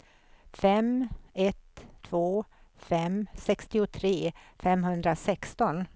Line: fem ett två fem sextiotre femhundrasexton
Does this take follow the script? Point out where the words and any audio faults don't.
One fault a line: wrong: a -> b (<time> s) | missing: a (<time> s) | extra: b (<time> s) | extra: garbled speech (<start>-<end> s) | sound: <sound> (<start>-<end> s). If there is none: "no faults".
no faults